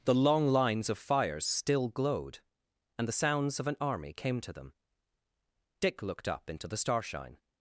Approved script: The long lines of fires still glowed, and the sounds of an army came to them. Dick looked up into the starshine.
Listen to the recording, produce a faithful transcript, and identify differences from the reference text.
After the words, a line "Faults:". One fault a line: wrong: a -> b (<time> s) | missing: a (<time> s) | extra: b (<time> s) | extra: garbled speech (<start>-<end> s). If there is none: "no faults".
The long lines of fires still glowed, and the sounds of an army came to them. Dick looked up into the starshine.
Faults:
no faults